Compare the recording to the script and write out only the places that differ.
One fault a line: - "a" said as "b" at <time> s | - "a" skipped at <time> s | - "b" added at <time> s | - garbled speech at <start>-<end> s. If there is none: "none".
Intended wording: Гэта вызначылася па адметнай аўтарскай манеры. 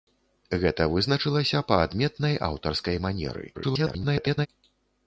- garbled speech at 3.5-4.5 s